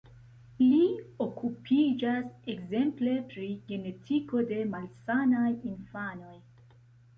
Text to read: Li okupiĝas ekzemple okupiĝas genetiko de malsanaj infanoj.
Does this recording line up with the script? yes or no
no